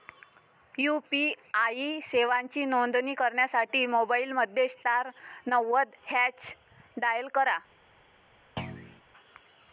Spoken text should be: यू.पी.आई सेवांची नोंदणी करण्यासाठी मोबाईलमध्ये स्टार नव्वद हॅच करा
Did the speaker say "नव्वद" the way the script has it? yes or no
yes